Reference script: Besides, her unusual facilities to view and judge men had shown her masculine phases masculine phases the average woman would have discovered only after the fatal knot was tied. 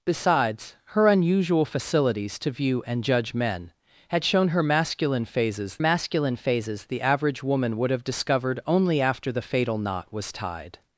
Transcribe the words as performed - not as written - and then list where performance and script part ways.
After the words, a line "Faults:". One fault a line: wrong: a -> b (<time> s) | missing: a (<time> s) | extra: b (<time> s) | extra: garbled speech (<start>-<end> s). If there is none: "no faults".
Besides, her unusual facilities to view and judge men had shown her masculine phases masculine phases the average woman would have discovered only after the fatal knot was tied.
Faults:
no faults